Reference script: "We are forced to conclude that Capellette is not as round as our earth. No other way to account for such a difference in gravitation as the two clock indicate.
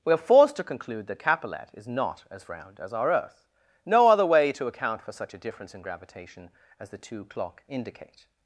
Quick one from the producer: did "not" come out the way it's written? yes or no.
yes